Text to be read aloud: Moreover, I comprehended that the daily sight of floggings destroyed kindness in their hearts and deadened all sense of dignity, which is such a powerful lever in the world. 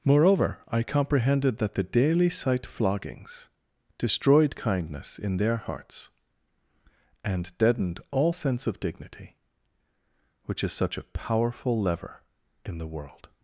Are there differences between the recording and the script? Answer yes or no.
yes